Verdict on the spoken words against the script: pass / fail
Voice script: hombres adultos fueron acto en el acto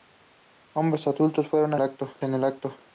pass